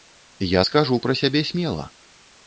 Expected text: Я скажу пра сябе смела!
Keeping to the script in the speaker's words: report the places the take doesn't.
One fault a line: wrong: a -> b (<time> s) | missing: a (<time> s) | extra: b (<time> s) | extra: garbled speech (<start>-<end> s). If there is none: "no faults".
no faults